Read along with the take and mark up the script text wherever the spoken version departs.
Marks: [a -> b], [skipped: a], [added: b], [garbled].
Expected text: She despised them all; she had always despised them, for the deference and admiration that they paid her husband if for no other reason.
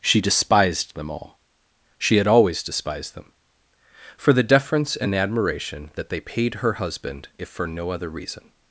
She despised them all; she had always despised them, for the deference and admiration that they paid her husband if for no other reason.